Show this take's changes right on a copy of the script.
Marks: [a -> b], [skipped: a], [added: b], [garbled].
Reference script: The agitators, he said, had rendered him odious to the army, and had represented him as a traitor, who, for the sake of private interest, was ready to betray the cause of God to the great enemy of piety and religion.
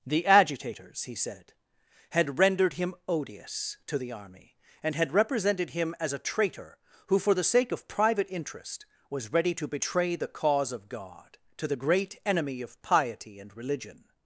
The agitators, he said, had rendered him odious to the army, and had represented him as a traitor, who, for the sake of private interest, was ready to betray the cause of God to the great enemy of piety and religion.